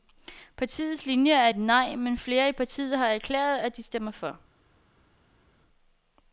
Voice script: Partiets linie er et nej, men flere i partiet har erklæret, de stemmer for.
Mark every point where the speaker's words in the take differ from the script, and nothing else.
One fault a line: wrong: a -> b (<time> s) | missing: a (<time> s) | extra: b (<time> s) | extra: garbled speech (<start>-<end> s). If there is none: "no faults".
extra: at (3.6 s)